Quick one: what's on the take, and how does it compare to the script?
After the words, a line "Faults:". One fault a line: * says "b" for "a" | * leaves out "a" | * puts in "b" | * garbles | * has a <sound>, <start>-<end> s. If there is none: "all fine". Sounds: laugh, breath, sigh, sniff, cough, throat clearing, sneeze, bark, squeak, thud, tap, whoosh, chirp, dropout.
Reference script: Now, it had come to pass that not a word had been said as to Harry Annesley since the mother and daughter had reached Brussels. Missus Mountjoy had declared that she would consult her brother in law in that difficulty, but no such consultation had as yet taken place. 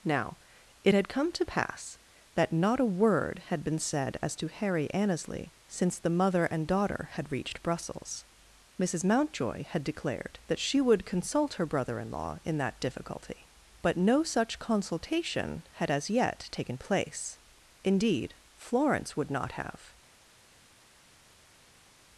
Now, it had come to pass that not a word had been said as to Harry Annesley since the mother and daughter had reached Brussels. Missus Mountjoy had declared that she would consult her brother in law in that difficulty, but no such consultation had as yet taken place. Indeed, Florence would not have
Faults:
* puts in "Indeed Florence would not have"